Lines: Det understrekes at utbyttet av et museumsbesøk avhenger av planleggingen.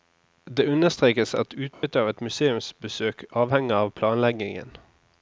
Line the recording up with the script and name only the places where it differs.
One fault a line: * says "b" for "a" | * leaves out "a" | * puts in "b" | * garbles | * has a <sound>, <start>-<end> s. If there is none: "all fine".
* has a dropout, 1.7-1.8 s